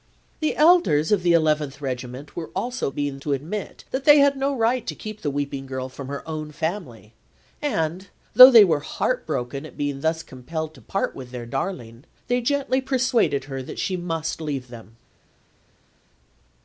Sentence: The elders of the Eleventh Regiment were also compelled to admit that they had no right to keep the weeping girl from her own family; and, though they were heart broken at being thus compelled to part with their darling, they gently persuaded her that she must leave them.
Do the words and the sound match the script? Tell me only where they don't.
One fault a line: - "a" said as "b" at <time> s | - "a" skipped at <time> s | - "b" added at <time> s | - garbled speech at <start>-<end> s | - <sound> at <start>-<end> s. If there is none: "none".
- "compelled" said as "being" at 2.9 s